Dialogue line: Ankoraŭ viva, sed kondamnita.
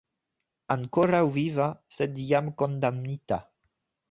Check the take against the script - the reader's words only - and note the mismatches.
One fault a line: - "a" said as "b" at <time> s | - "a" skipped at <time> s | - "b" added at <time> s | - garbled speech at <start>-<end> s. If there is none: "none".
- "jam" added at 2.3 s